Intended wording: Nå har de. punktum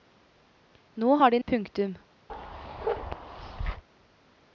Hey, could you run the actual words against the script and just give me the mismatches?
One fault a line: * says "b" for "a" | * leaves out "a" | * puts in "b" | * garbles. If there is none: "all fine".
all fine